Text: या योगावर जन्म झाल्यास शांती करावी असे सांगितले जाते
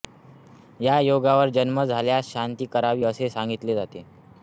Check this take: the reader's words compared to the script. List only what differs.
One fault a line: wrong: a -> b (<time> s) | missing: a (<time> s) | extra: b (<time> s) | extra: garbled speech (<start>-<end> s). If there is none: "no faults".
no faults